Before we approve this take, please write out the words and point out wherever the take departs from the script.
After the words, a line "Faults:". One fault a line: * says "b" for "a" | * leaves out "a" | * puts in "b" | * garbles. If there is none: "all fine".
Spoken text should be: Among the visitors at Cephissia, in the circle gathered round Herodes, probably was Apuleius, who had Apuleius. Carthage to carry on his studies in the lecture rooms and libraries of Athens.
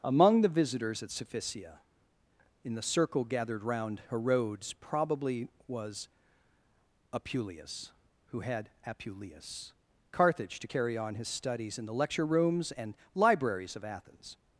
Among the visitors at Cephissia, in the circle gathered round Herodes, probably was Apuleius, who had Apuleius. Carthage to carry on his studies in the lecture rooms and libraries of Athens.
Faults:
all fine